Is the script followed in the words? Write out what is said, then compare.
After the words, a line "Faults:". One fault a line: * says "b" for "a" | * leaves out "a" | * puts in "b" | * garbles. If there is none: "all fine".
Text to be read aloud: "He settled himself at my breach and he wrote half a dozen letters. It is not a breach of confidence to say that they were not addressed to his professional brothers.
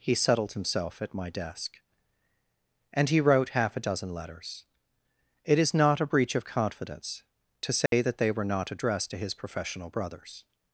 "He settled himself at my desk and he wrote half a dozen letters. It is not a breach of confidence to say that they were not addressed to his professional brothers.
Faults:
* says "desk" for "breach"